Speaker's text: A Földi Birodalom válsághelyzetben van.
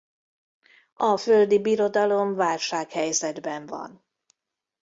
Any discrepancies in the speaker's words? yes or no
no